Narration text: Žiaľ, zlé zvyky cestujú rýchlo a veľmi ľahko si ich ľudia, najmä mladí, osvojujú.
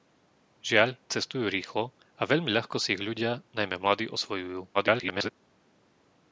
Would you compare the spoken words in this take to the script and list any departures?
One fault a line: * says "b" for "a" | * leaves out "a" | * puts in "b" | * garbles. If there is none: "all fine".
* leaves out "zlé zvyky"
* garbles